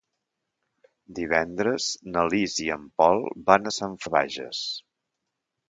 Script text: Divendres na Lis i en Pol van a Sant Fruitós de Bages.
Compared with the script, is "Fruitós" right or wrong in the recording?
wrong